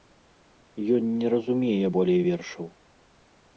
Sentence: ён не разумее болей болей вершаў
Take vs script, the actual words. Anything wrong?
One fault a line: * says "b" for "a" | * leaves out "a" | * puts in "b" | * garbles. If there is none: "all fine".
* leaves out "болей"